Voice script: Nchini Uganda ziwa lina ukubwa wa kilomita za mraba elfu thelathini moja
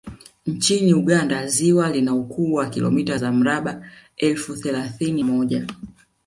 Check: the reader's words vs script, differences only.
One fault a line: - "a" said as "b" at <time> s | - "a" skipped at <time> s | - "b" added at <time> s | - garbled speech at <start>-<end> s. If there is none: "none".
none